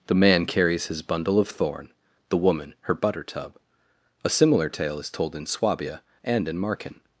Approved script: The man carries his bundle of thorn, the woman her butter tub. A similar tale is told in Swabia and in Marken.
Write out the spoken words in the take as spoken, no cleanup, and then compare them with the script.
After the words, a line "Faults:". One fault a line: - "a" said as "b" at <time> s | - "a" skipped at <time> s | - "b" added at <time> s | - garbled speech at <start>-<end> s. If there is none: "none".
The man carries his bundle of thorn, the woman her butter tub. A similar tale is told in Swabia and in Marken.
Faults:
none